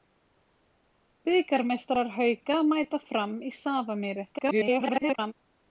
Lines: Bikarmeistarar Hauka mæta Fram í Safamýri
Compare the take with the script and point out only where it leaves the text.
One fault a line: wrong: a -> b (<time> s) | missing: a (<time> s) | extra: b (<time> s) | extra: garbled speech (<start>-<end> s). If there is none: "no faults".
extra: garbled speech (4.3-5.3 s)